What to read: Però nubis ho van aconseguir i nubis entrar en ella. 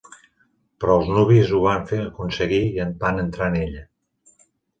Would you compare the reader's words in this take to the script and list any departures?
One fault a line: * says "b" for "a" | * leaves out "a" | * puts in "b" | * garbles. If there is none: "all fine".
* puts in "els"
* says "van" for "nubis"